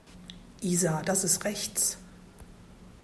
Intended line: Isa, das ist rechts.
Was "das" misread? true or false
false